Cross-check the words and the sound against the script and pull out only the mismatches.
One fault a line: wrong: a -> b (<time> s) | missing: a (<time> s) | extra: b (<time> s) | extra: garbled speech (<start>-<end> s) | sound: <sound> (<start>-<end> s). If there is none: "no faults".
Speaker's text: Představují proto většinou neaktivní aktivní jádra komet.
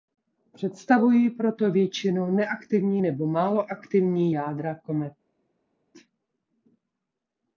extra: nebo málo (3.0 s)